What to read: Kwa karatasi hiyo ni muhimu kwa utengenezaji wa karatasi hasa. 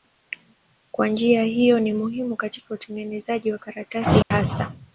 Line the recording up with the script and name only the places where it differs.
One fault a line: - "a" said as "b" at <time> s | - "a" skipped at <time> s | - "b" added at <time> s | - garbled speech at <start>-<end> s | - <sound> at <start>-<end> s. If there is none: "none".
- "karatasi" said as "njia" at 1.1 s
- "kwa" said as "katika" at 2.4 s
- dropout at 4.2-4.3 s